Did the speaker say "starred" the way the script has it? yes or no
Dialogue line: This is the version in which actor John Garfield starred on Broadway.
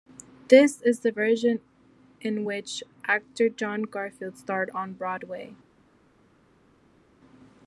yes